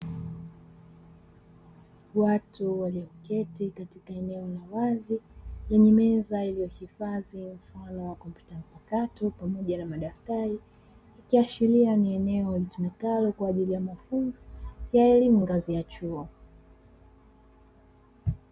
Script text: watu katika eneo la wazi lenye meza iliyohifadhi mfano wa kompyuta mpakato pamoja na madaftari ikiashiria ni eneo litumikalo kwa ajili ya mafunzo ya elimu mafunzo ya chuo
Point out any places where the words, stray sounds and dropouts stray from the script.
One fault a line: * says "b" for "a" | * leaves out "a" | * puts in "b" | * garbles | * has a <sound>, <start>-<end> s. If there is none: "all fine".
* puts in "walioketi"
* says "ngazi" for "mafunzo"